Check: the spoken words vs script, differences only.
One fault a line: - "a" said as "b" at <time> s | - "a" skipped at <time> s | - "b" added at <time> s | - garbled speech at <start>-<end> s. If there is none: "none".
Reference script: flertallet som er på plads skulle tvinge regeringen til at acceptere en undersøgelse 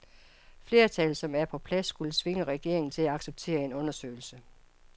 none